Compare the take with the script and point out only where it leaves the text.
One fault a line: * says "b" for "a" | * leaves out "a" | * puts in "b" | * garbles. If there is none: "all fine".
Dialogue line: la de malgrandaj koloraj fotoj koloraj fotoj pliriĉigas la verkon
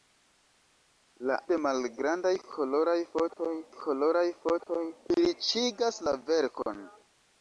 all fine